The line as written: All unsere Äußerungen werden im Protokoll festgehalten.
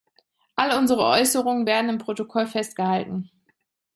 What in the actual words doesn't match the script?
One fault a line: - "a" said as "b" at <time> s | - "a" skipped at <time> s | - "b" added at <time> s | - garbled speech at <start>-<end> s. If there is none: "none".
none